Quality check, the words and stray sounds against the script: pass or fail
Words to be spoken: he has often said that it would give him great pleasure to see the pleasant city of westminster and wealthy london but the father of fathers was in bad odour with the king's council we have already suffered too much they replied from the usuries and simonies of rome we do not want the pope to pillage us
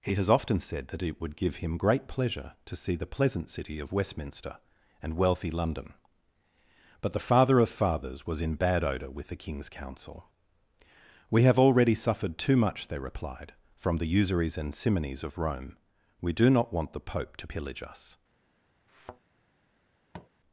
fail